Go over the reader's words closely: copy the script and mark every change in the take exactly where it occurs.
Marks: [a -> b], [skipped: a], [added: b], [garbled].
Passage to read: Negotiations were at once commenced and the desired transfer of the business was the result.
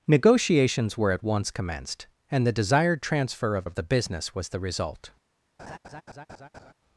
Negotiations were at once commenced and the desired transfer of [added: of] the business was the result.